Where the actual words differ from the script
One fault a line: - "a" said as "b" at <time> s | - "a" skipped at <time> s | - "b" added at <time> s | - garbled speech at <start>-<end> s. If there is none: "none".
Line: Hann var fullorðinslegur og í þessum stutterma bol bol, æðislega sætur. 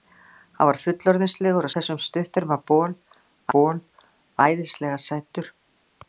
none